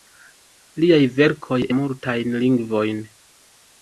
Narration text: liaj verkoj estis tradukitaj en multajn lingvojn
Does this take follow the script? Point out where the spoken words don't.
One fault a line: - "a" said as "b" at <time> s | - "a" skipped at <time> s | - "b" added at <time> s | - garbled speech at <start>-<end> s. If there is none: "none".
- "estis tradukitaj en" skipped at 1.6 s